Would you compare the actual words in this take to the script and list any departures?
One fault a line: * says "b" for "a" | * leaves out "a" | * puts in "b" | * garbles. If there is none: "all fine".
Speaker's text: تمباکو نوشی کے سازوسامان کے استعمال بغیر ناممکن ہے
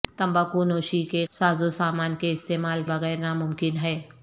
all fine